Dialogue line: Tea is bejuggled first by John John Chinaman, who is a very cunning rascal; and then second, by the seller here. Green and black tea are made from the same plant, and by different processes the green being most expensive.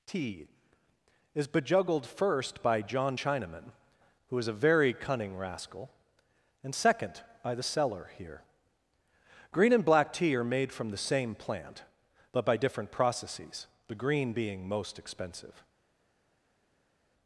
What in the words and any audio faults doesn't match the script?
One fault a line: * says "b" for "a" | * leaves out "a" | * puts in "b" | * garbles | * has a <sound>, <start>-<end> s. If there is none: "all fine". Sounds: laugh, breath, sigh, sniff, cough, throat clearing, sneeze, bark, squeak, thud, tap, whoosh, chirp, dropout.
* leaves out "John"
* leaves out "then"
* says "but" for "and"